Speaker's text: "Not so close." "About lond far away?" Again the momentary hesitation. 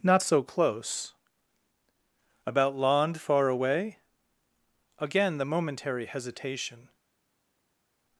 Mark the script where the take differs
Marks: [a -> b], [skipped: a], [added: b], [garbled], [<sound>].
"Not so close." "About lond far away?" Again the momentary hesitation.